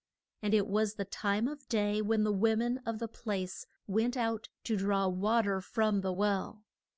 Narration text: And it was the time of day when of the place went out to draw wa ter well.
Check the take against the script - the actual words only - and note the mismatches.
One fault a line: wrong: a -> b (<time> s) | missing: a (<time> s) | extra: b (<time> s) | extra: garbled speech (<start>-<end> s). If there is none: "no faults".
extra: the wo men (2.2 s)
extra: from the (5.6 s)